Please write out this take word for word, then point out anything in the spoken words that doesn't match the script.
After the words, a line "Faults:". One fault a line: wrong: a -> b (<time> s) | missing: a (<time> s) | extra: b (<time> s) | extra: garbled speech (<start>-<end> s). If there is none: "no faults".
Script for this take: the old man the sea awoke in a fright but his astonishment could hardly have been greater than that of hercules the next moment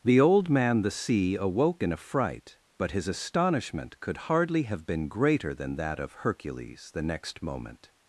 the old man the sea awoke in a fright but his astonishment could hardly have been greater than that of hercules the next moment
Faults:
no faults